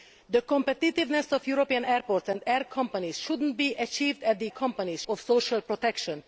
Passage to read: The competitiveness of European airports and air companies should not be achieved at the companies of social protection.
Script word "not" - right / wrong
right